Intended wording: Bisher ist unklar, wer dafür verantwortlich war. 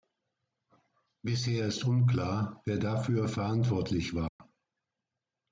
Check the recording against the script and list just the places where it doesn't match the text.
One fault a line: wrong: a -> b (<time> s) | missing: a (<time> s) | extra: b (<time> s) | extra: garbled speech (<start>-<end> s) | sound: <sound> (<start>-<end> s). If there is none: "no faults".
sound: dropout (4.3-4.4 s)